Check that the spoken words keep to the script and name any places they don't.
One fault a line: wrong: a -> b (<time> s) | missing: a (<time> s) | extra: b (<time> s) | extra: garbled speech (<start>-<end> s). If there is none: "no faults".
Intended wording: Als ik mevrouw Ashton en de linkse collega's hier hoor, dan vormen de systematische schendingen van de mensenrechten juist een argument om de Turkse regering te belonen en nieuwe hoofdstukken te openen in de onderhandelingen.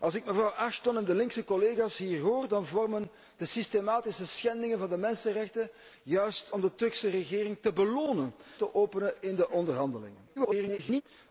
missing: een argument (6.5 s)
missing: en nieuwe hoofdstukken (8.3 s)
extra: garbled speech (10.4-11.0 s)